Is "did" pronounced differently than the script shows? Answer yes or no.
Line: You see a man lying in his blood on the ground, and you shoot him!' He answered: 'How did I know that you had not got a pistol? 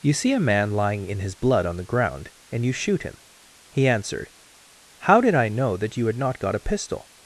no